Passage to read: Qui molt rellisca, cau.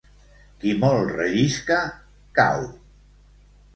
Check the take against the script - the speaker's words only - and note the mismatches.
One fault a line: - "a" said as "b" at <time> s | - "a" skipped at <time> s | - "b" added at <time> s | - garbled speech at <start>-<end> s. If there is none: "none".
none